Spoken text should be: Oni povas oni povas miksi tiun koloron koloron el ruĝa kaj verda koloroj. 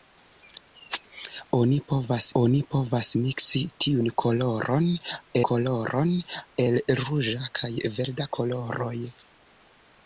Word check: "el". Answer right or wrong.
right